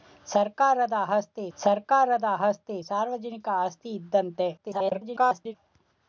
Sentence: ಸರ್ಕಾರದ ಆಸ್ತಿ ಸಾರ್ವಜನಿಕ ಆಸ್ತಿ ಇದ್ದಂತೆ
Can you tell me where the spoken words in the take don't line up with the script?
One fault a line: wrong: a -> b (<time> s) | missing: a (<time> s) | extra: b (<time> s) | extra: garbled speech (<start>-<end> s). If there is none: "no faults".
extra: ಸರ್ಕಾರದ ಆಸ್ತಿ (1.6 s)
extra: garbled speech (4.6-5.5 s)